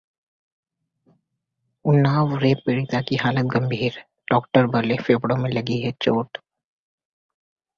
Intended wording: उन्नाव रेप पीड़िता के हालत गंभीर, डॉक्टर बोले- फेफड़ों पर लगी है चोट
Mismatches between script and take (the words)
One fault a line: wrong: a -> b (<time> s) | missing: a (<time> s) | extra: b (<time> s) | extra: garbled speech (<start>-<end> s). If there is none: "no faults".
wrong: के -> की (3.0 s)
wrong: पर -> में (5.4 s)